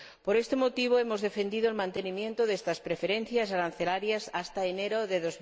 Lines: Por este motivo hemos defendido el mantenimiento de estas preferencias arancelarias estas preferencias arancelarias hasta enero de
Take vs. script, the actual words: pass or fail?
fail